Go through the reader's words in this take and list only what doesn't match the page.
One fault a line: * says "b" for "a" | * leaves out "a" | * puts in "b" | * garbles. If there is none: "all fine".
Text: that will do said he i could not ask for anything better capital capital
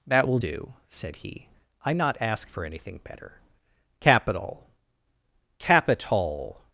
* leaves out "could"